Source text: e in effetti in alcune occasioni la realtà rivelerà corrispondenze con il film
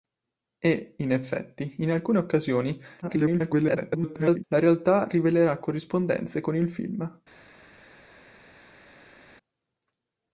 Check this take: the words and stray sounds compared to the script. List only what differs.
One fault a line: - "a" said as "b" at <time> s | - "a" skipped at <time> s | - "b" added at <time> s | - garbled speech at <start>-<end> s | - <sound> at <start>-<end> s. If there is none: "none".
- garbled speech at 3.0-4.4 s